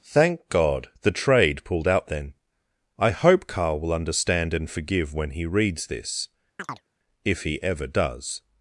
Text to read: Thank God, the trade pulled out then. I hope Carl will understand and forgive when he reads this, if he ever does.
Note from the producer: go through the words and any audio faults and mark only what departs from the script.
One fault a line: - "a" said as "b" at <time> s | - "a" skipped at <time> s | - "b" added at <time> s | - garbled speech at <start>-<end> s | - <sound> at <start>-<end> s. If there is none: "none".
- chirp at 6.6-6.9 s